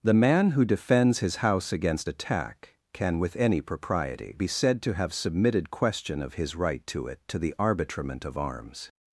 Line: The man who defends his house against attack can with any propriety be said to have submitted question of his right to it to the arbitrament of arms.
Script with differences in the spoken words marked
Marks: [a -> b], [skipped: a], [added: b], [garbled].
The man who defends his house against attack can with any propriety be said to have submitted question of his right to it to the arbitrament of arms.